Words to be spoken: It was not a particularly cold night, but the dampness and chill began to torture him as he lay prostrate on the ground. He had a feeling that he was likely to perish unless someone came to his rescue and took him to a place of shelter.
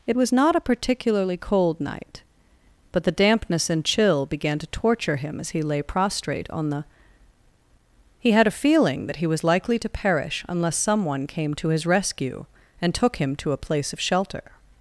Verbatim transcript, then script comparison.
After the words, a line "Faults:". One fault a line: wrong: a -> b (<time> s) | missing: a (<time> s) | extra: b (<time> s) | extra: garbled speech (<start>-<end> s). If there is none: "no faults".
It was not a particularly cold night, but the dampness and chill began to torture him as he lay prostrate on the. He had a feeling that he was likely to perish unless someone came to his rescue and took him to a place of shelter.
Faults:
missing: ground (6.8 s)